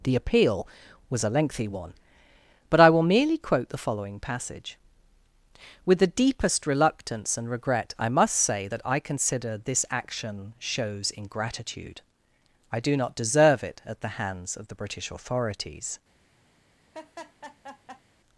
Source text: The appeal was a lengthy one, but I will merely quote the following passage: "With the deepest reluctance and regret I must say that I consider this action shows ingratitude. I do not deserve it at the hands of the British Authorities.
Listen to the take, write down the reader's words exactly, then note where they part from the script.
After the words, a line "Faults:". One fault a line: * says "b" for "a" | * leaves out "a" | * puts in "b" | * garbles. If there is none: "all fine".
The appeal was a lengthy one, but I will merely quote the following passage: "With the deepest reluctance and regret I must say that I consider this action shows ingratitude. I do not deserve it at the hands of the British Authorities.
Faults:
all fine